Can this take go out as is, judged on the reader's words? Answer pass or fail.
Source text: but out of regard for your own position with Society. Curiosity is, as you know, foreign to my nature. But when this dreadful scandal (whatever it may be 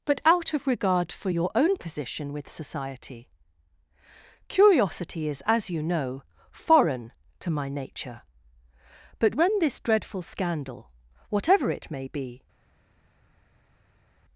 pass